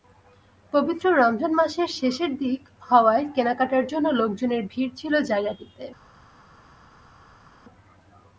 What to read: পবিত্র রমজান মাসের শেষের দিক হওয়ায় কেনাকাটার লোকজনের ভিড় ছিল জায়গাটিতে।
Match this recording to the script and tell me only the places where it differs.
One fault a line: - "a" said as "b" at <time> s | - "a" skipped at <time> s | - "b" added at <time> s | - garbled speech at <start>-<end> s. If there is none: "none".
- "জন্য" added at 3.9 s